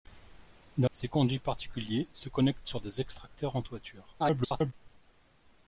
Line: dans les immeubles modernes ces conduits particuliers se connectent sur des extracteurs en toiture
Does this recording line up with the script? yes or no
no